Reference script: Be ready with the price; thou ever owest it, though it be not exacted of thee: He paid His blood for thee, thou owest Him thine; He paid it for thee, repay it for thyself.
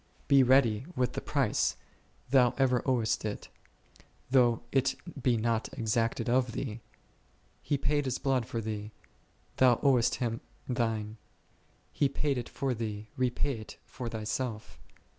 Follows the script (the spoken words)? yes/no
yes